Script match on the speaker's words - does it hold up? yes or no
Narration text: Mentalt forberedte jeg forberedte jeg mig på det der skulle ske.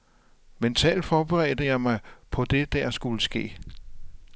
no